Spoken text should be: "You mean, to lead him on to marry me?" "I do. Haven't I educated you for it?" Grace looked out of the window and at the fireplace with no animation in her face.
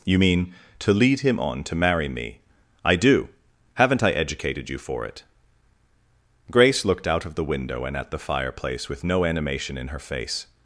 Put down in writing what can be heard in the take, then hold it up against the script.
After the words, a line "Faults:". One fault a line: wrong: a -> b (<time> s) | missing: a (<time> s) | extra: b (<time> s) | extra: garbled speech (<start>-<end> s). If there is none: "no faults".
"You mean, to lead him on to marry me?" "I do. Haven't I educated you for it?" Grace looked out of the window and at the fireplace with no animation in her face.
Faults:
no faults